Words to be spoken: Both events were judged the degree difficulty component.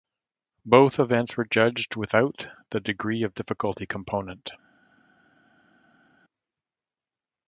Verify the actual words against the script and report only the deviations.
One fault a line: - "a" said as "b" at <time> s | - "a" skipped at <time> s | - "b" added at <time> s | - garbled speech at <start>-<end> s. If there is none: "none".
- "without" added at 1.9 s
- "of" added at 3.2 s